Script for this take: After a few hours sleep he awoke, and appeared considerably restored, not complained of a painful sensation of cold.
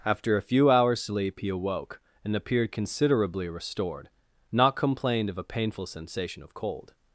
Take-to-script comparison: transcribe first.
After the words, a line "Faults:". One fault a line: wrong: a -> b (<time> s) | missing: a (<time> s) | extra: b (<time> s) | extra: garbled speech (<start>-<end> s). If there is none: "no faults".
After a few hours sleep he awoke, and appeared considerably restored, not complained of a painful sensation of cold.
Faults:
no faults